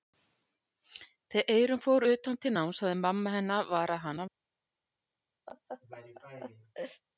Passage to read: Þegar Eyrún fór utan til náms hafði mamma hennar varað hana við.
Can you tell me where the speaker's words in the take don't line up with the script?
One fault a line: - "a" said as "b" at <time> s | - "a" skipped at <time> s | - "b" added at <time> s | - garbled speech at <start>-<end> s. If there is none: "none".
none